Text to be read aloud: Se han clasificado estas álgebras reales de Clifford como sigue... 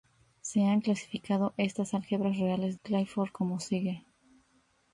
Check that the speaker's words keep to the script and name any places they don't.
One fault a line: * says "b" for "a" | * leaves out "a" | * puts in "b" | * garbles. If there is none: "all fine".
* leaves out "de"